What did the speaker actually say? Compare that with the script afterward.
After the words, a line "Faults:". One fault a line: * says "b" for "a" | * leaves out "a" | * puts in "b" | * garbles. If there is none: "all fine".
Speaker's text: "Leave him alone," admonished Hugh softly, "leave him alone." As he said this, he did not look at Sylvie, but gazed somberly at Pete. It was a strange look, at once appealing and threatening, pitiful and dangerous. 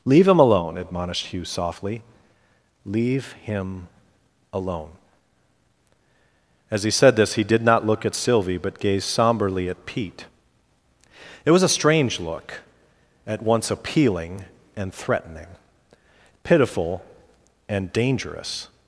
"Leave him alone," admonished Hugh softly, "leave him alone." As he said this, he did not look at Sylvie, but gazed somberly at Pete. It was a strange look, at once appealing and threatening, pitiful and dangerous.
Faults:
all fine